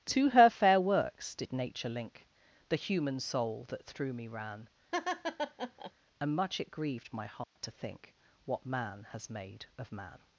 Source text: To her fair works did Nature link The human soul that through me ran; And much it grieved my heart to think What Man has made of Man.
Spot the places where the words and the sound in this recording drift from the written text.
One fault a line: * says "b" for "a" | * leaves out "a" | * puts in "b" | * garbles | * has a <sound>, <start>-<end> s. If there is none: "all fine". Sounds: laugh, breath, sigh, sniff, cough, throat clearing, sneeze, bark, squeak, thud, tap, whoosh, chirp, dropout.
* has a laugh, 4.9-5.9 s
* has a dropout, 7.4-7.6 s